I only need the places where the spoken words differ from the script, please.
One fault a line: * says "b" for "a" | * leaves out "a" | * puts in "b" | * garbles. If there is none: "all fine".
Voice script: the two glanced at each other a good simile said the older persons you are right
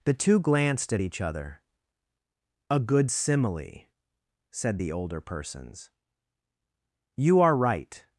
all fine